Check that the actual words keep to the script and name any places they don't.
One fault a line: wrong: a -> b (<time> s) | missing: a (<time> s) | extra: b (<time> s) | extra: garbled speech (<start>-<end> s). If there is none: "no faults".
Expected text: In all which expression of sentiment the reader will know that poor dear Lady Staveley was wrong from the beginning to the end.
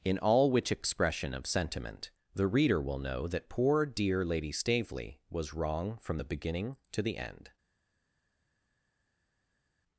no faults